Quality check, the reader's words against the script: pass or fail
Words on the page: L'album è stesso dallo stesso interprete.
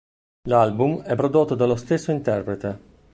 fail